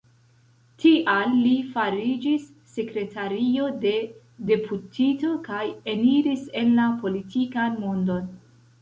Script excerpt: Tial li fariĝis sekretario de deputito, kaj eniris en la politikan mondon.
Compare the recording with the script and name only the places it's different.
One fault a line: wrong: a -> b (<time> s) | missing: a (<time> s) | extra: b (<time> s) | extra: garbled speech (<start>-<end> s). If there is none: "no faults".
no faults